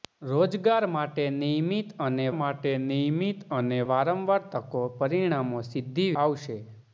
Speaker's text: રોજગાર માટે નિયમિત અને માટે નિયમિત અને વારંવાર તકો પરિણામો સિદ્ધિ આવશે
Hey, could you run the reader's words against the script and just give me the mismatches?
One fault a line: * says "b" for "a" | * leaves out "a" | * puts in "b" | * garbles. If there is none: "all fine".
all fine